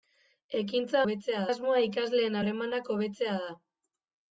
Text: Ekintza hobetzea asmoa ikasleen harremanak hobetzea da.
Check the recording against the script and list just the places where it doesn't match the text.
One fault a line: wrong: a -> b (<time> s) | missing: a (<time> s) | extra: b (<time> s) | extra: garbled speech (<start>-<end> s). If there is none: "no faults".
no faults